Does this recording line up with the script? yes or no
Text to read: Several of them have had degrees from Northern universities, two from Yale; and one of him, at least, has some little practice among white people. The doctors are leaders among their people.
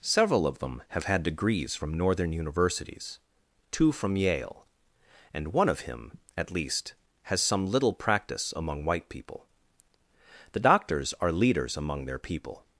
yes